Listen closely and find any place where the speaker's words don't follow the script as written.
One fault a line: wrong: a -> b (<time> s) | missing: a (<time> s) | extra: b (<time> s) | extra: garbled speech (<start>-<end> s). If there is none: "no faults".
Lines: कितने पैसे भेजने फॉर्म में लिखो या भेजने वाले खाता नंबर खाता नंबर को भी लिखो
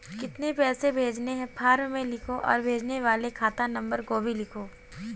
extra: हैं (1.3 s)
wrong: या -> और (2.3 s)
missing: खाता नंबर (4.0 s)